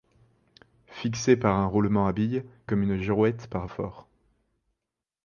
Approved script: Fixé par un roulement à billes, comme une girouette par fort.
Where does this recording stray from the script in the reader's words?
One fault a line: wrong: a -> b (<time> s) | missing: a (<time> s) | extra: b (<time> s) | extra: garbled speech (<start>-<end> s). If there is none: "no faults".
no faults